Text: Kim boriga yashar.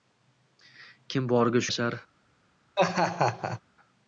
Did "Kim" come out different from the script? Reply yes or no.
no